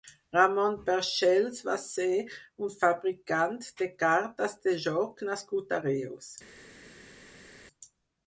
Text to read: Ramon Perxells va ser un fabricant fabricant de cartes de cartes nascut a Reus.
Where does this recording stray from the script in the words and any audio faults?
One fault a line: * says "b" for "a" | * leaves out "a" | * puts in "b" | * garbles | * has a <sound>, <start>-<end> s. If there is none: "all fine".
* leaves out "fabricant"
* says "joc" for "cartes"